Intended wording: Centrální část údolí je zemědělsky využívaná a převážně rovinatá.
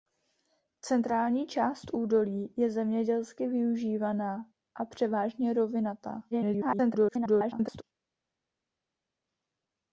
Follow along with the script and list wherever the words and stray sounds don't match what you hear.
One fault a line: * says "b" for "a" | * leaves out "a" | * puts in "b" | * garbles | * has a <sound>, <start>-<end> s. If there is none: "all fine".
* garbles